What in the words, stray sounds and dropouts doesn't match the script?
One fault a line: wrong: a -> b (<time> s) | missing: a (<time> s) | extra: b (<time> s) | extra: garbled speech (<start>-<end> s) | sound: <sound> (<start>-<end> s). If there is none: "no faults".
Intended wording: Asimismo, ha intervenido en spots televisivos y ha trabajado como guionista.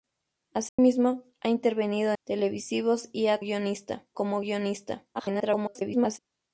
sound: dropout (0.7-0.8 s)
missing: en spots (2.1 s)
wrong: trabajado -> guionista (3.4 s)
extra: garbled speech (5.1-6.2 s)